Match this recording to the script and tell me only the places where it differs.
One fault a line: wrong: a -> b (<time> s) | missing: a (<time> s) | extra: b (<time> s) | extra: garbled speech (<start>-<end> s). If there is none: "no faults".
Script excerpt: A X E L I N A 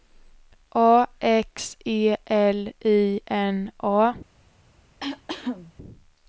no faults